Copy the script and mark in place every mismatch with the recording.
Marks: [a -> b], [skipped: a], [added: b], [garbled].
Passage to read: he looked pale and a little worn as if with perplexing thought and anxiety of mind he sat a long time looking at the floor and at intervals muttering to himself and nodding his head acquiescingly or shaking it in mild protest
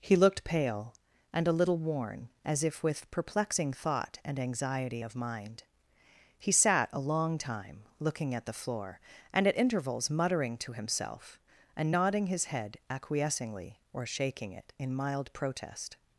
he looked pale and a little worn as if with perplexing thought and anxiety of mind he sat a long time looking at the floor and at intervals muttering to himself and nodding his head acquiescingly or shaking it in mild protest